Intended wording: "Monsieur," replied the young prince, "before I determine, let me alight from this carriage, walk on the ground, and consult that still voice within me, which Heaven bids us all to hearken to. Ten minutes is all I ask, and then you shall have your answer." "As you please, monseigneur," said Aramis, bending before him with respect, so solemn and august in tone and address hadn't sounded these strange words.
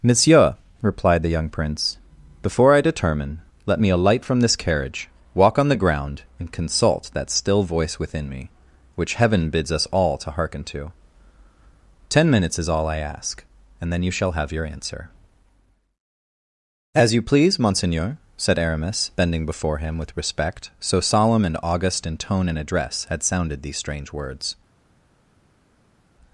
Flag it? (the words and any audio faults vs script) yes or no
yes